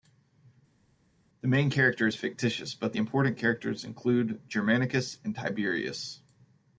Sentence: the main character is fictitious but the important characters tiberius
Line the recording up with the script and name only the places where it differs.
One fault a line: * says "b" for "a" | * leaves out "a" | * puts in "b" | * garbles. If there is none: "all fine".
* puts in "include germanicus and"